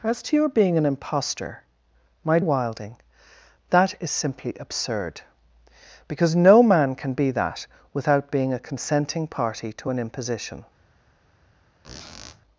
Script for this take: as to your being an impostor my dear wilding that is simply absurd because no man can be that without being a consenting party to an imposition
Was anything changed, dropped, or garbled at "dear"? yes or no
yes